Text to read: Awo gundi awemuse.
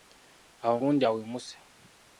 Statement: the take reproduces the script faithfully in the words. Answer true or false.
true